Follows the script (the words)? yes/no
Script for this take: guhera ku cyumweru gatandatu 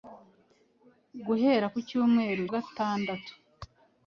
yes